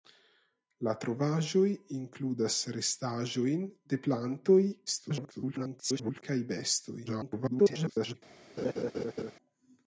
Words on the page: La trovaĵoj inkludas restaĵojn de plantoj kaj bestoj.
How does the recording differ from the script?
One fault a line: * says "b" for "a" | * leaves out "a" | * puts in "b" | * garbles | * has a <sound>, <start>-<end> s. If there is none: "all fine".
* garbles
* garbles
* has a laugh, 8.6-9.3 s